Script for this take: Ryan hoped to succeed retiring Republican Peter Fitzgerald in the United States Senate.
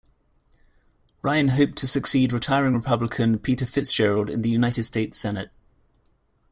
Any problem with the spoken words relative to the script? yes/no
no